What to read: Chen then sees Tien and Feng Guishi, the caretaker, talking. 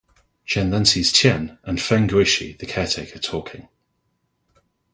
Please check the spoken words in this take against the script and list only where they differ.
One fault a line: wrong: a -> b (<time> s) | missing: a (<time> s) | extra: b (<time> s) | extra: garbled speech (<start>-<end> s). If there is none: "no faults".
no faults